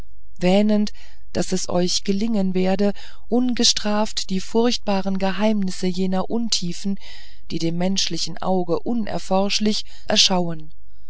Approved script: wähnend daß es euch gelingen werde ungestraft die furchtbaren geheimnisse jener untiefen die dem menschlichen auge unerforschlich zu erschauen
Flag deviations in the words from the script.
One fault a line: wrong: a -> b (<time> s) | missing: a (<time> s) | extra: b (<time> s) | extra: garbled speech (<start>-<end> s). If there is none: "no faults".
missing: zu (9.8 s)